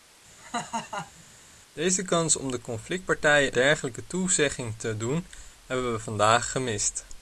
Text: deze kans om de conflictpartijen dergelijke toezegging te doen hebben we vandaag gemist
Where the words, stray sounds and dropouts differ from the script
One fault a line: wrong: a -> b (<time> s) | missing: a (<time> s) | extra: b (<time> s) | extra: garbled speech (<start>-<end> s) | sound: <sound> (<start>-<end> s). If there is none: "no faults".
sound: laugh (0.4-1.2 s)